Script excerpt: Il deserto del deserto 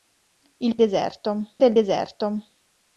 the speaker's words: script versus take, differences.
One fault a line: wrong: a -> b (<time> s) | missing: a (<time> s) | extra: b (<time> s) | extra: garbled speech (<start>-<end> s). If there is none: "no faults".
no faults